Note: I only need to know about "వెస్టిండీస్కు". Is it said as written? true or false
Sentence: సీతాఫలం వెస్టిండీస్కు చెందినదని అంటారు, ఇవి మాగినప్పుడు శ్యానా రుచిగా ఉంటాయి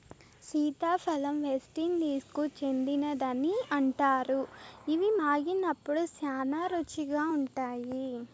true